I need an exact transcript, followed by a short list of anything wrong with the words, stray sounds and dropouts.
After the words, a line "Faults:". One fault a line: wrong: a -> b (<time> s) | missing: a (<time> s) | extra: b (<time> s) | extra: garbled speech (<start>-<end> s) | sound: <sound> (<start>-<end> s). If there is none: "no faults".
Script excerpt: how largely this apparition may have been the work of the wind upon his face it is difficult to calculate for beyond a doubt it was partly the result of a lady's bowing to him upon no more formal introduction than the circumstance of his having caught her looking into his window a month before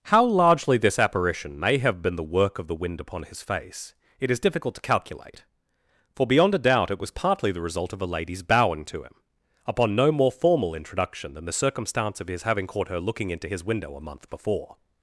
how largely this apparition may have been the work of the wind upon his face it is difficult to calculate for beyond a doubt it was partly the result of a lady's bowing to him upon no more formal introduction than the circumstance of his having caught her looking into his window a month before
Faults:
no faults